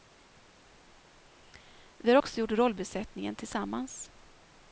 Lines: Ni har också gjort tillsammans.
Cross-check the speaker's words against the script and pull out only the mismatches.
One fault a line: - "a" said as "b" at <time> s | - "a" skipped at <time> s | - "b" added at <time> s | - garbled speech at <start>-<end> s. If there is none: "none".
- "Ni" said as "Vi" at 2.0 s
- "rollbesättningen" added at 2.5 s